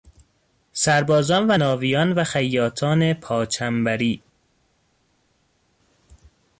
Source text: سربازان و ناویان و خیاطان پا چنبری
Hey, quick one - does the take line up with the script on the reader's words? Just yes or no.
yes